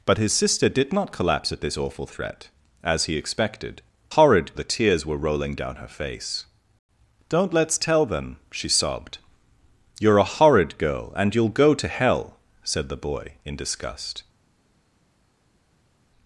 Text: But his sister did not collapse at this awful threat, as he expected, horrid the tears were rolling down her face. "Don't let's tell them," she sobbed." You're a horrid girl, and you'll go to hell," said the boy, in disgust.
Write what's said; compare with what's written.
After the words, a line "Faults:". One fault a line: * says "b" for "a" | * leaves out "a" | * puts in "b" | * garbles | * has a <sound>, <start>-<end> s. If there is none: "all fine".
But his sister did not collapse at this awful threat, as he expected, horrid the tears were rolling down her face. "Don't let's tell them," she sobbed." You're a horrid girl, and you'll go to hell," said the boy, in disgust.
Faults:
all fine